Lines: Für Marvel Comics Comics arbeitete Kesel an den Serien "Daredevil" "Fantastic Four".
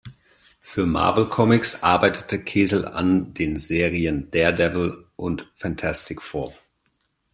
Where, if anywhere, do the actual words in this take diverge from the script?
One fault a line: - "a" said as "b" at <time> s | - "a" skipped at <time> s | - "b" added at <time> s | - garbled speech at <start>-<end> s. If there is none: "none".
- "Comics" skipped at 1.8 s
- "und" added at 5.2 s